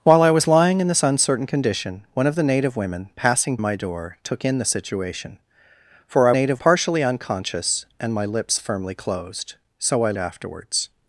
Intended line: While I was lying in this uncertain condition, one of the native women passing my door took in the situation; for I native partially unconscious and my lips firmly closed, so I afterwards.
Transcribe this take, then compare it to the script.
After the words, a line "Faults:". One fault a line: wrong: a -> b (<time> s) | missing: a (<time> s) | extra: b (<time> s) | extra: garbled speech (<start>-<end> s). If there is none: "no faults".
While I was lying in this uncertain condition, one of the native women passing my door took in the situation; for I native partially unconscious and my lips firmly closed, so I afterwards.
Faults:
no faults